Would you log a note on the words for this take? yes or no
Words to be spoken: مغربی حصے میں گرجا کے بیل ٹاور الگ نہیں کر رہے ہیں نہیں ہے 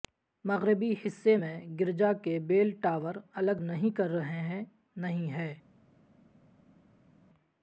no